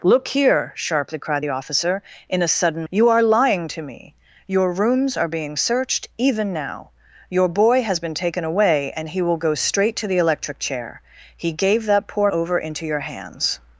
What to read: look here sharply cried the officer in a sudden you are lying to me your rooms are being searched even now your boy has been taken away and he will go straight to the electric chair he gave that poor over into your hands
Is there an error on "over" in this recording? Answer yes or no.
no